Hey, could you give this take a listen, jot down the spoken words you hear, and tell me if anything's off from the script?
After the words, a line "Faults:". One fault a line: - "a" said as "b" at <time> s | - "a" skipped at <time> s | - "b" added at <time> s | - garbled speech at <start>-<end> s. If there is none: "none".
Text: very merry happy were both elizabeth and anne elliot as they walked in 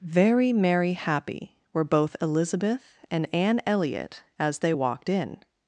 very merry happy were both elizabeth and anne elliot as they walked in
Faults:
none